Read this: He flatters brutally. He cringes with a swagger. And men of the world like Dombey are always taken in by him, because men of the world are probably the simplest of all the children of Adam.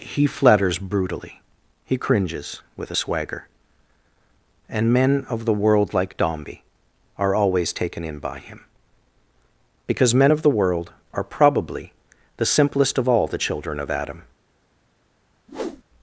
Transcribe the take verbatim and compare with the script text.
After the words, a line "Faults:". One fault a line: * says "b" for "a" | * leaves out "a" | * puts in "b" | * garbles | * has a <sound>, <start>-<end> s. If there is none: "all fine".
He flatters brutally. He cringes with a swagger. And men of the world like Dombey are always taken in by him, because men of the world are probably the simplest of all the children of Adam.
Faults:
* has a whoosh, 15.5-15.8 s